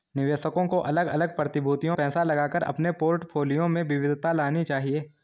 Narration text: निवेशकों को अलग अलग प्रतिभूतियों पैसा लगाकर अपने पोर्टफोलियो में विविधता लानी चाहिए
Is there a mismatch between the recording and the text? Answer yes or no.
no